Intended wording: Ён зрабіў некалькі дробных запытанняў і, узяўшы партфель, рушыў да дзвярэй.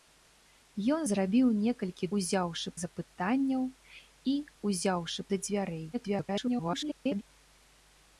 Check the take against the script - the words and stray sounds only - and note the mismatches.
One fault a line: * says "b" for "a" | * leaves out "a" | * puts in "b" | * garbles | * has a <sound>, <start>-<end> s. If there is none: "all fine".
* says "узяўшы" for "дробных"
* leaves out "партфель рушыў"
* garbles